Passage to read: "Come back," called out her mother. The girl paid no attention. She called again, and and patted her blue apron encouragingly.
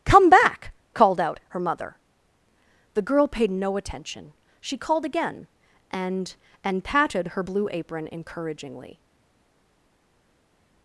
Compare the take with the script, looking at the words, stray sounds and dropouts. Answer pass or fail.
pass